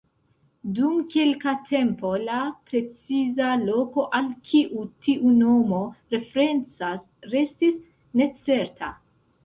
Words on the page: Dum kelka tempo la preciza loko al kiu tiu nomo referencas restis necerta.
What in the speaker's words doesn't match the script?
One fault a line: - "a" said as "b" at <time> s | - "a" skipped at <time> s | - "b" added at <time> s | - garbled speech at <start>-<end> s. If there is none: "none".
none